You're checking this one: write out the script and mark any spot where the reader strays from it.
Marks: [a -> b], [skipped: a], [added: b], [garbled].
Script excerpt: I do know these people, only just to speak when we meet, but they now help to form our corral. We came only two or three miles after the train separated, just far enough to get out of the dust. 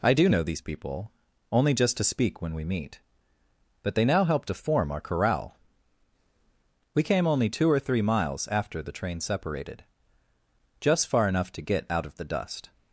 I do know these people, only just to speak when we meet, but they now help to form our corral. We came only two or three miles after the train separated, just far enough to get out of the dust.